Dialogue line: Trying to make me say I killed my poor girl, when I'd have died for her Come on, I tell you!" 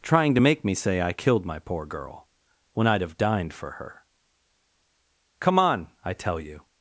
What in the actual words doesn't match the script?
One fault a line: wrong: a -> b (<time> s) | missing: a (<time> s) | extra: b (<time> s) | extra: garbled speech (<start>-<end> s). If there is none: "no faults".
wrong: died -> dined (3.2 s)